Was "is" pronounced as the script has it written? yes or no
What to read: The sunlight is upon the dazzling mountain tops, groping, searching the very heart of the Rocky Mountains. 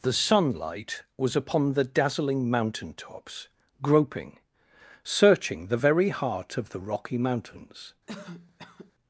no